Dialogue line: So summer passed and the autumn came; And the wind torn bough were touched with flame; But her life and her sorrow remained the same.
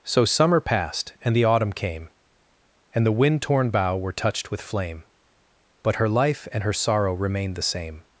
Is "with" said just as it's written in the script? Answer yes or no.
yes